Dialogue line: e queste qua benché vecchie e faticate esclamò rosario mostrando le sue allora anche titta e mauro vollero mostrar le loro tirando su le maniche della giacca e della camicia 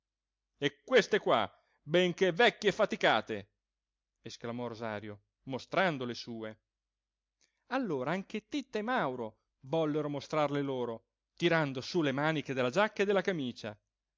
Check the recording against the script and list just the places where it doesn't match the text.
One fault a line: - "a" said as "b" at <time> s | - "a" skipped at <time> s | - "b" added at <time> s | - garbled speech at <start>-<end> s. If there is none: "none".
none